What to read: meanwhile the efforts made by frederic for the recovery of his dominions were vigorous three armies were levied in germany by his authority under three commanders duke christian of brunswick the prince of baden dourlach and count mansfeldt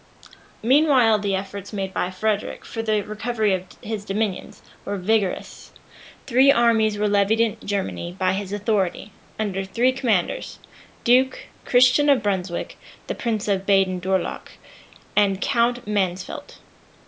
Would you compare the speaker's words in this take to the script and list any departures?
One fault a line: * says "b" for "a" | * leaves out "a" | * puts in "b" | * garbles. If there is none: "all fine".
all fine